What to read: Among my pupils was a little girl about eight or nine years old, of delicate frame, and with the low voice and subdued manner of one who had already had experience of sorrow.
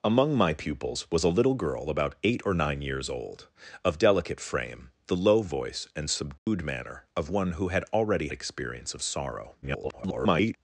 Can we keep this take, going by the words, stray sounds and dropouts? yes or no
no